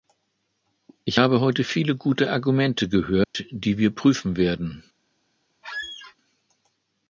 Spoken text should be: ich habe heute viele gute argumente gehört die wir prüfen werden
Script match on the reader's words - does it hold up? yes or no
yes